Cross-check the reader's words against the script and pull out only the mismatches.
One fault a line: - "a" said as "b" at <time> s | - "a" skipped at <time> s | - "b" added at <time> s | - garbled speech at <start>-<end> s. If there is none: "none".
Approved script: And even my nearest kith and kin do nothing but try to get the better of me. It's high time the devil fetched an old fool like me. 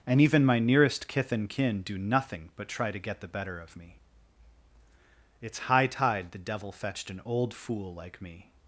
- "time" said as "tide" at 5.9 s